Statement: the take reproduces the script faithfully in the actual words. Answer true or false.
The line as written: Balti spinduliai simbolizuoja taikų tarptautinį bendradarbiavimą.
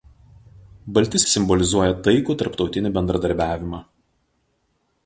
false